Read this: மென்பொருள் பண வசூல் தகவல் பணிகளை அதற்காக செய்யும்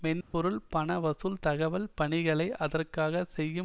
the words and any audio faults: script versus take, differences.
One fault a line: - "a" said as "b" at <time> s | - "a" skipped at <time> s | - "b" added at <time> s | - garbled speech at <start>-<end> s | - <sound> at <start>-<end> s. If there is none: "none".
- dropout at 0.2-0.3 s